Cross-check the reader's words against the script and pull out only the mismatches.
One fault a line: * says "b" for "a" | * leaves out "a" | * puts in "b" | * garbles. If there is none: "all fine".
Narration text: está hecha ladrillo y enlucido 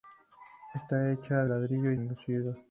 all fine